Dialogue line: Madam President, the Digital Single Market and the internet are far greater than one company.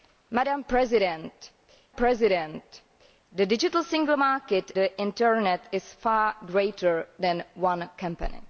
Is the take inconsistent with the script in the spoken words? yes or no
yes